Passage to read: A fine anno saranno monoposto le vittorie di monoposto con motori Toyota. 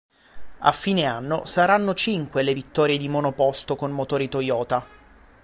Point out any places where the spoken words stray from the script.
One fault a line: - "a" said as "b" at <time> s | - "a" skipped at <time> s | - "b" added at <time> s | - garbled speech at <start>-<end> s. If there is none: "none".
- "monoposto" said as "cinque" at 1.9 s